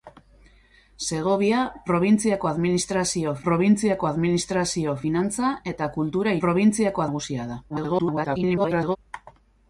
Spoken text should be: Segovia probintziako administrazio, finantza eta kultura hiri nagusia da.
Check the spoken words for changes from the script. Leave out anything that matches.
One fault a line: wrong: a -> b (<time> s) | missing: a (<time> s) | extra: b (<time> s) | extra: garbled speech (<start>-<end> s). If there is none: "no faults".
extra: probintziako administrazio (3.5 s)
wrong: hiri -> probintziako (6.4 s)
extra: garbled speech (7.7-9.0 s)